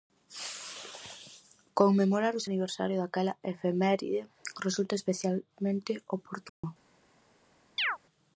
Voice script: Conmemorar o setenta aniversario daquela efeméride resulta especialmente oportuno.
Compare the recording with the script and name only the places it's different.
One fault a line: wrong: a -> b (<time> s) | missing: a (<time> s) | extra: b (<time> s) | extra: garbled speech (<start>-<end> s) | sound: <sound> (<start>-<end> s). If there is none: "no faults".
missing: setenta (2.5 s)
sound: dropout (6.5-6.6 s)
sound: chirp (7.8-8.0 s)